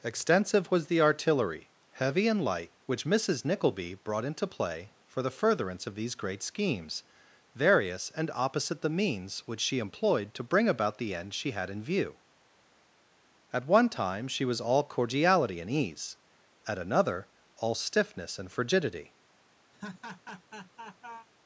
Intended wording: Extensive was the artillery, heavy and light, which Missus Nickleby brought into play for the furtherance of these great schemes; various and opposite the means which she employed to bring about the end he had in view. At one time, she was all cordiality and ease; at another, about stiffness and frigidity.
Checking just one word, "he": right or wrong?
wrong